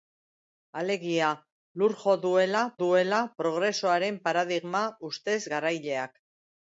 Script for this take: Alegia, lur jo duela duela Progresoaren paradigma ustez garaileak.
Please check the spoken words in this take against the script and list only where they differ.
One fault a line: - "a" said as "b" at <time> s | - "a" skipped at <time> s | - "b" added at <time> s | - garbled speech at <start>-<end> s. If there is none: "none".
none